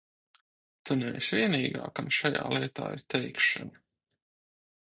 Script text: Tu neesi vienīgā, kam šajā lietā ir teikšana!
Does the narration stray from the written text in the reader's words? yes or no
no